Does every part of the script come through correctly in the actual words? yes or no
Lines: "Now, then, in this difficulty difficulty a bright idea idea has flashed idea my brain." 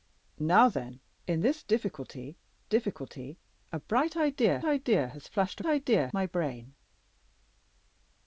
yes